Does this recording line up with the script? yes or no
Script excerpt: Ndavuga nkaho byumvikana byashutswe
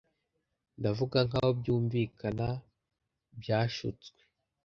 yes